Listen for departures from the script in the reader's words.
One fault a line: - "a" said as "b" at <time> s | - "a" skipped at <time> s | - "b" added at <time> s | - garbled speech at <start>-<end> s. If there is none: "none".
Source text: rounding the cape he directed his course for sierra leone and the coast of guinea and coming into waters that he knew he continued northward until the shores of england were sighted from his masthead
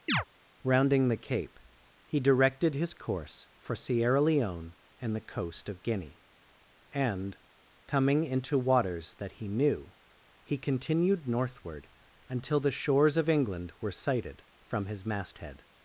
none